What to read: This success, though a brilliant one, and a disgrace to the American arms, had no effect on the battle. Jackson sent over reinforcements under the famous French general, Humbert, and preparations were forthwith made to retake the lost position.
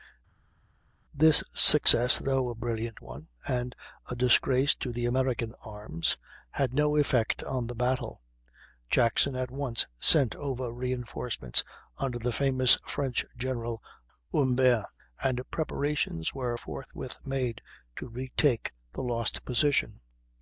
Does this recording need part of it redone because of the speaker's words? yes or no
yes